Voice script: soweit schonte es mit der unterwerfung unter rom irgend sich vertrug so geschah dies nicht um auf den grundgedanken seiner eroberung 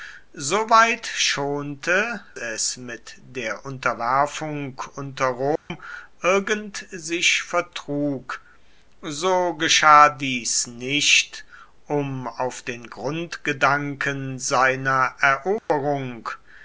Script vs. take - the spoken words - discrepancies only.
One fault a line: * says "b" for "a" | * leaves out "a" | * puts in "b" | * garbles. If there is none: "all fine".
all fine